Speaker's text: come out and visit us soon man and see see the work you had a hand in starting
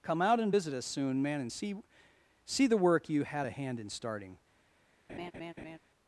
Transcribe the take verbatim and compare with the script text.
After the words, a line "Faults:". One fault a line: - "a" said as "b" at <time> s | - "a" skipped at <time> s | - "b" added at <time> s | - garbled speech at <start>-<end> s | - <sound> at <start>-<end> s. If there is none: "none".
come out and visit us soon man and see see the work you had a hand in starting
Faults:
- laugh at 5.1-5.8 s